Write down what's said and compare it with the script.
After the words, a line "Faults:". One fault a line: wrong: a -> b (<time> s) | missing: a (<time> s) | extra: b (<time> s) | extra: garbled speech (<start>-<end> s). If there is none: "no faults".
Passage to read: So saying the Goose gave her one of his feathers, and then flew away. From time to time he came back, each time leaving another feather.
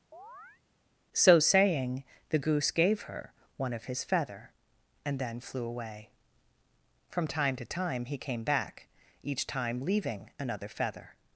So saying the Goose gave her one of his feather, and then flew away. From time to time he came back, each time leaving another feather.
Faults:
wrong: feathers -> feather (4.0 s)